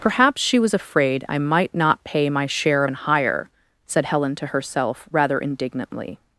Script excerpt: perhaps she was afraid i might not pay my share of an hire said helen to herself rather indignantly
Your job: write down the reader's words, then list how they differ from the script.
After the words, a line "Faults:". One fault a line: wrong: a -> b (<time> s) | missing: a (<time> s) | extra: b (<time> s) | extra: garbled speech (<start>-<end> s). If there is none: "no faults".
perhaps she was afraid i might not pay my share of an hire said helen to herself rather indignantly
Faults:
no faults